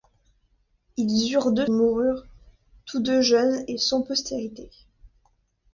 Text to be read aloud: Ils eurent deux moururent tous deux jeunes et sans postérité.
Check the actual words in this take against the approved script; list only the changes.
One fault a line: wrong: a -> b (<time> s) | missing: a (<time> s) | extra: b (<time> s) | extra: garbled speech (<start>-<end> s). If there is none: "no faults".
no faults